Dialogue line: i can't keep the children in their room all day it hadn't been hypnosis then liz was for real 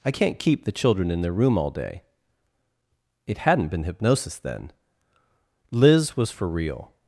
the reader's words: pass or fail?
pass